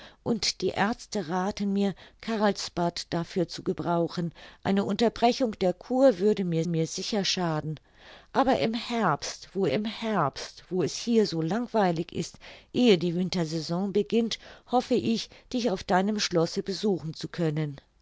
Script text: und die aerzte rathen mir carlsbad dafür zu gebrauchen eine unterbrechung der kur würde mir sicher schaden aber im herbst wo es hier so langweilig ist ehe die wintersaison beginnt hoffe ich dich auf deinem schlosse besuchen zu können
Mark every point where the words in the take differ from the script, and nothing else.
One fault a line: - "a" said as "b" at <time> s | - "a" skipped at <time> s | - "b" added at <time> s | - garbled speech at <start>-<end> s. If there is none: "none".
- "mir" added at 6.6 s
- "im herbst wo" added at 9.7 s